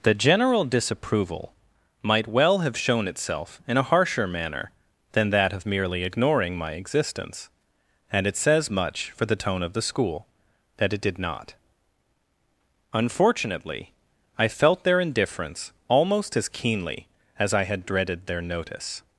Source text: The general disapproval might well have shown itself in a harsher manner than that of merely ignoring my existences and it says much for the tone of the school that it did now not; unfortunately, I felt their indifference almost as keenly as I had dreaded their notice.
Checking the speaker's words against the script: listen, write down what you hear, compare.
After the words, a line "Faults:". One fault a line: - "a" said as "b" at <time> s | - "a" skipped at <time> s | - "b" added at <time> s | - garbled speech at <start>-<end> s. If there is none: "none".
The general disapproval might well have shown itself in a harsher manner than that of merely ignoring my existence and it says much for the tone of the school that it did not; unfortunately, I felt their indifference almost as keenly as I had dreaded their notice.
Faults:
- "existences" said as "existence" at 6.7 s
- "now" skipped at 11.2 s